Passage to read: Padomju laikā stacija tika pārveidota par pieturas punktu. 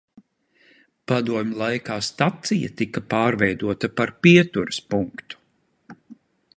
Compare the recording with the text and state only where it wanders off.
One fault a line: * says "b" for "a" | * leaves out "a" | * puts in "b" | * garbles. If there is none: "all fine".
all fine